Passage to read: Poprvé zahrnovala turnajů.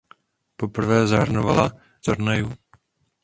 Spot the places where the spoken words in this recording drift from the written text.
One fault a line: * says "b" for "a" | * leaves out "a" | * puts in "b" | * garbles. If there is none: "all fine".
all fine